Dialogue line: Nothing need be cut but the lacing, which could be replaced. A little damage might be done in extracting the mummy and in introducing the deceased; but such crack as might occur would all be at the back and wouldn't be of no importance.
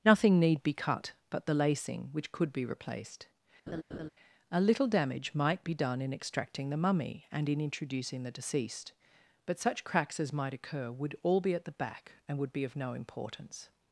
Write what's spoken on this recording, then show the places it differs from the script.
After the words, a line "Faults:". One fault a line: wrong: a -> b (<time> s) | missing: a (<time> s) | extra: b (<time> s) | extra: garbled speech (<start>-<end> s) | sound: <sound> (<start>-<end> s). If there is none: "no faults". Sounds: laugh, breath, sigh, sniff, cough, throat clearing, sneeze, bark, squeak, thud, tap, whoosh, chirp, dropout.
Nothing need be cut but the lacing, which could be replaced. A little damage might be done in extracting the mummy and in introducing the deceased; but such cracks as might occur would all be at the back and would be of no importance.
Faults:
sound: laugh (3.7-4.1 s)
wrong: crack -> cracks (9.8 s)
wrong: wouldn't -> would (12.4 s)